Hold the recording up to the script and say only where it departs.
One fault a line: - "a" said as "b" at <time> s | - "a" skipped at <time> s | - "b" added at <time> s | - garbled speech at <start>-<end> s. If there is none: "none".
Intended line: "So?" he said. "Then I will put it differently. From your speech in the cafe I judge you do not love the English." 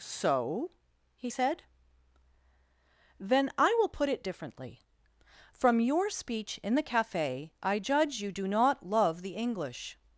none